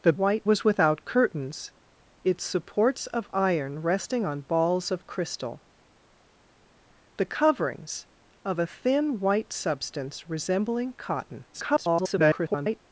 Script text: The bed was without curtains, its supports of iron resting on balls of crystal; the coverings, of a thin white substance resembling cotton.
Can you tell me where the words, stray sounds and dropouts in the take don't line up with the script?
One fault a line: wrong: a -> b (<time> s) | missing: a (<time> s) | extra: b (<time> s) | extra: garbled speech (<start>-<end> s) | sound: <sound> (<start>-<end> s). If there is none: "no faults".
wrong: bed -> white (0.1 s)
extra: garbled speech (11.5-12.8 s)